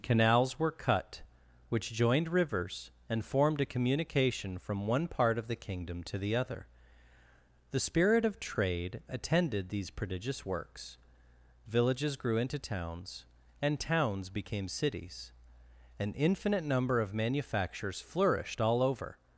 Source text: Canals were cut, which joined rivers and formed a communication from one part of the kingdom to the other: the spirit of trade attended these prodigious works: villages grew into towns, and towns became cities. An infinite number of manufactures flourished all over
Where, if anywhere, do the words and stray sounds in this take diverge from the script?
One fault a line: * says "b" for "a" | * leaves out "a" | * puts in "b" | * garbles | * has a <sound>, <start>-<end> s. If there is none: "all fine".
all fine